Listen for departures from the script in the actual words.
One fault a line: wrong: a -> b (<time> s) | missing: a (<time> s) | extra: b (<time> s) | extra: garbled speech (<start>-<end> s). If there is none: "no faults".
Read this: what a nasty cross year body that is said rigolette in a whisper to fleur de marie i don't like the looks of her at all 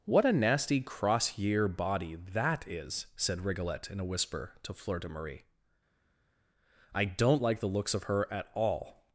no faults